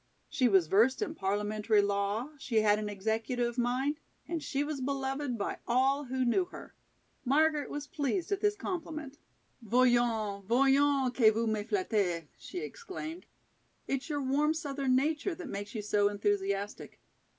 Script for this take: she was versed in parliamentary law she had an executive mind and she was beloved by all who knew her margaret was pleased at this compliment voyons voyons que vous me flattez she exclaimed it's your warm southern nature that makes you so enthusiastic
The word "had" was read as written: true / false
true